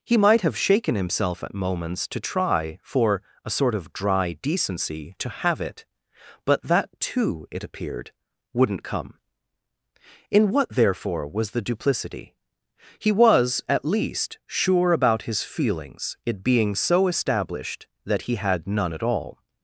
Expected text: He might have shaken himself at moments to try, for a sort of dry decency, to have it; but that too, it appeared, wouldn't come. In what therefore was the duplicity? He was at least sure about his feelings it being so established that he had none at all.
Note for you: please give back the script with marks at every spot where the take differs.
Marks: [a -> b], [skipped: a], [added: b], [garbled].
He might have shaken himself at moments to try, for a sort of dry decency, to have it; but that too, it appeared, wouldn't come. In what therefore was the duplicity? He was at least sure about his feelings it being so established that he had none at all.